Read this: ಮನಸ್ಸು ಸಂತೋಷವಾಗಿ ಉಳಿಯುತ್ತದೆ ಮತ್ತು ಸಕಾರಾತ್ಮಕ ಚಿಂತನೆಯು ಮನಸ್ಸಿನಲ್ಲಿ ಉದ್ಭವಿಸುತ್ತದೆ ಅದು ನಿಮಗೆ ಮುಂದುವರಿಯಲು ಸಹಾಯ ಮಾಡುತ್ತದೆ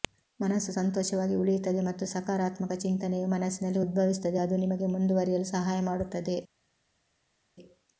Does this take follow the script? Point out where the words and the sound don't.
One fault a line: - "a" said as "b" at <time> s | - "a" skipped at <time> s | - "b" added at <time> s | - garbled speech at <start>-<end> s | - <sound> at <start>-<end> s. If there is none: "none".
none